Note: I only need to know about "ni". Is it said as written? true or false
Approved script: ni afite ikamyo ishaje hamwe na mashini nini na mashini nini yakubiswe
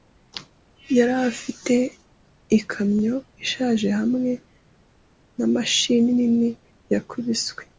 false